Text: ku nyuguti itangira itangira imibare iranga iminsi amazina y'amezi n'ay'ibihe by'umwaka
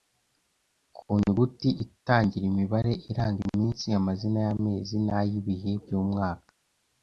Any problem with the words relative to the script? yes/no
yes